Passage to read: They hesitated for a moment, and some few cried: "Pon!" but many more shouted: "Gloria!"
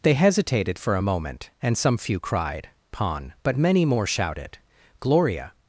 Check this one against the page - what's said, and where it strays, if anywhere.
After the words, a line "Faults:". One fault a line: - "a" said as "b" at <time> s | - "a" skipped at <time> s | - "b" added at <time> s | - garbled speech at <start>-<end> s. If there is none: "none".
They hesitated for a moment, and some few cried: "Pon!" but many more shouted: "Gloria!"
Faults:
none